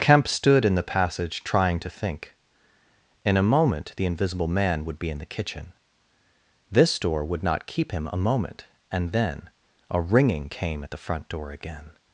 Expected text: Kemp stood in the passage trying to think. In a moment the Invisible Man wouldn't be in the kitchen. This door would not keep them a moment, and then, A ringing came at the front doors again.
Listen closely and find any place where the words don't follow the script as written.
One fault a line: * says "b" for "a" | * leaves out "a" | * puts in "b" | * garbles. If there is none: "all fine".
* says "would" for "wouldn't"
* says "him" for "them"
* says "door" for "doors"